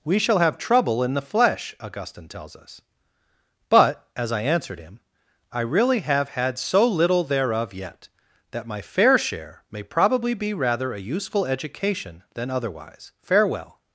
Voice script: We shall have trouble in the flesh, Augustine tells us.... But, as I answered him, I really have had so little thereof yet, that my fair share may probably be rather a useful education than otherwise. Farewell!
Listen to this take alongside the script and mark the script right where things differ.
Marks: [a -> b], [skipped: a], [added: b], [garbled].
We shall have trouble in the flesh, Augustine tells us.... But, as I answered him, I really have had so little thereof yet, that my fair share may probably be rather a useful education than otherwise. Farewell!